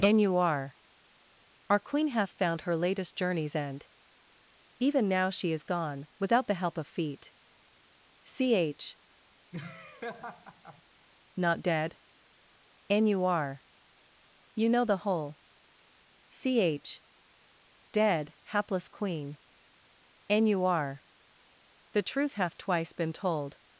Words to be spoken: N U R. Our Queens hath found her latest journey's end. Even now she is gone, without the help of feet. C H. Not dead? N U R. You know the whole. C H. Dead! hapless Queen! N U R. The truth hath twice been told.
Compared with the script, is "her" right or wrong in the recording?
right